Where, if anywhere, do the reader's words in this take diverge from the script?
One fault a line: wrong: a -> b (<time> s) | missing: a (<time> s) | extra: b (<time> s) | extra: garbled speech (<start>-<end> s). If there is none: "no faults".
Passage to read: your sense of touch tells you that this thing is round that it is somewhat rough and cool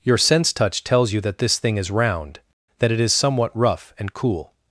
missing: of (0.5 s)